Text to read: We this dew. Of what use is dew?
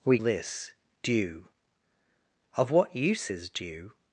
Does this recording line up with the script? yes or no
yes